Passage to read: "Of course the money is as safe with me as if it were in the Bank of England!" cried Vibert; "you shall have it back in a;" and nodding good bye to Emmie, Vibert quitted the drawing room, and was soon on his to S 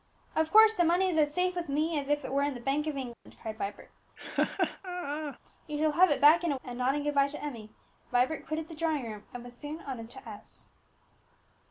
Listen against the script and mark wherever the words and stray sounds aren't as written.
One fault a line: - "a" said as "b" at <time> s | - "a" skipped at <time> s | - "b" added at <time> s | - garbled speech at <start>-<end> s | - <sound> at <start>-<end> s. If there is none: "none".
- dropout at 3.1-3.3 s
- laugh at 4.2-5.4 s